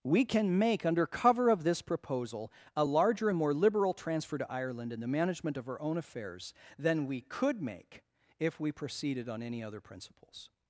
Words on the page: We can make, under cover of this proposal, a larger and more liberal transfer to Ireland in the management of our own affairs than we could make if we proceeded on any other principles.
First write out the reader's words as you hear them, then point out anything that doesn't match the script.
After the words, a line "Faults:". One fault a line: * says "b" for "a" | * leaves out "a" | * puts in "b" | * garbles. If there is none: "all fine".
We can make, under cover of this proposal, a larger and more liberal transfer to Ireland in the management of our own affairs than we could make if we proceeded on any other principles.
Faults:
all fine